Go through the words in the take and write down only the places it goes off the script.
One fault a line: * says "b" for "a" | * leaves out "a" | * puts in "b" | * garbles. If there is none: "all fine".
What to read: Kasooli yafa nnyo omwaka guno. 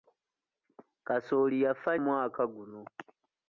* leaves out "nnyo"